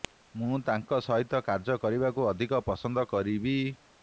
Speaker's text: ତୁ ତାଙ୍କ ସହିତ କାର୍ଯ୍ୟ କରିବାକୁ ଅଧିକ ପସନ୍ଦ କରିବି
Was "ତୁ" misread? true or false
true